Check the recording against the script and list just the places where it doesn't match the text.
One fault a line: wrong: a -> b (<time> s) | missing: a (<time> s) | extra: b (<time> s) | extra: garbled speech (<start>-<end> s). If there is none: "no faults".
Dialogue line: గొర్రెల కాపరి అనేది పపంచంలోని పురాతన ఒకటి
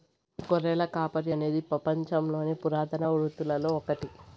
extra: వృత్తులలో (3.1 s)